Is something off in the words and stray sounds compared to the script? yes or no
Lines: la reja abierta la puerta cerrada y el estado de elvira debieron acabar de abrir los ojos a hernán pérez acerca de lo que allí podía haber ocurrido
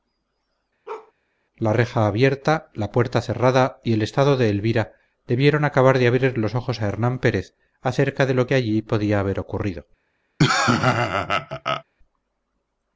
yes